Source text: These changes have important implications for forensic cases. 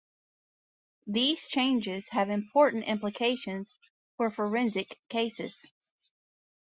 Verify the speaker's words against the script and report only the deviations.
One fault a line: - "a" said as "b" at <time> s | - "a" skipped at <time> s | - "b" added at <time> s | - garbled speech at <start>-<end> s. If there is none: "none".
none